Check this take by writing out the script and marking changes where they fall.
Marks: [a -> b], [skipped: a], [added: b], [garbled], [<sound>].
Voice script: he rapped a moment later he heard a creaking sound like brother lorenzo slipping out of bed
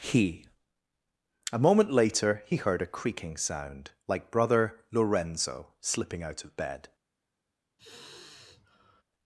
he [skipped: rapped] a moment later he heard a creaking sound like brother lorenzo slipping out of bed [sigh]